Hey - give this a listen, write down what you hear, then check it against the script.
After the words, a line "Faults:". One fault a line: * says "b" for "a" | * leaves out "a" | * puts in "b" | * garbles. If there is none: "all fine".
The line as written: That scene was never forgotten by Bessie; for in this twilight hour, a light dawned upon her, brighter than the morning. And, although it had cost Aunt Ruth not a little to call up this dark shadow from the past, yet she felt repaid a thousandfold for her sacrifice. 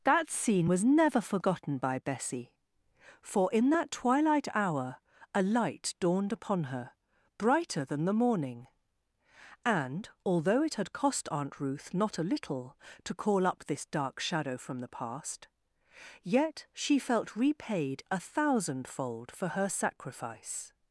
That scene was never forgotten by Bessie; for in that twilight hour, a light dawned upon her, brighter than the morning. And, although it had cost Aunt Ruth not a little to call up this dark shadow from the past, yet she felt repaid a thousandfold for her sacrifice.
Faults:
* says "that" for "this"